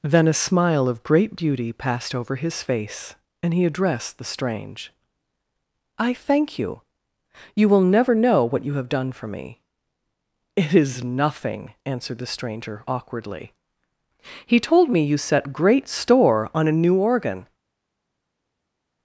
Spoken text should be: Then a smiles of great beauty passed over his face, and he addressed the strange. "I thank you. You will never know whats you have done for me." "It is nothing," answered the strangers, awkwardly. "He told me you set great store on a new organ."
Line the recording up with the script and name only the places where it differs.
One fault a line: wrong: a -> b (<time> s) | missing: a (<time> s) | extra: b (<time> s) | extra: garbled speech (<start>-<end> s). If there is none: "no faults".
wrong: smiles -> smile (0.3 s)
wrong: whats -> what (8.4 s)
wrong: strangers -> stranger (12.3 s)